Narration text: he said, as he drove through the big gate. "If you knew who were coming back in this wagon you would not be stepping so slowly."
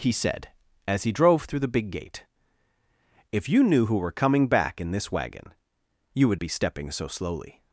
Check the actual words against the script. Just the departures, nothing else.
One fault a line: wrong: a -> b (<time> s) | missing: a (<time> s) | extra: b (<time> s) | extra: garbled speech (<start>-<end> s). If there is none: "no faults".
missing: not (6.4 s)